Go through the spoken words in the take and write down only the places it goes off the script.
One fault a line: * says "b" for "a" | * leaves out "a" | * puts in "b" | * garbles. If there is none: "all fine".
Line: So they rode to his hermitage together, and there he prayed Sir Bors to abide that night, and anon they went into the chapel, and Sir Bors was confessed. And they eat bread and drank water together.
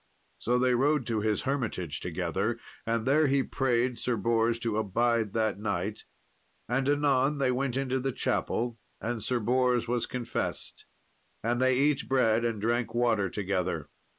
all fine